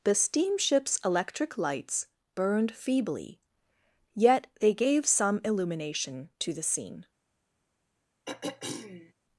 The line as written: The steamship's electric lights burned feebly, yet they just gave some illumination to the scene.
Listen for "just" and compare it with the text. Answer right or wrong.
wrong